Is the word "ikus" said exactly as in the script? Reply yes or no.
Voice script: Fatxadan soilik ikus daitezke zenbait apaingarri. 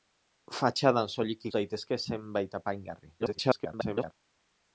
no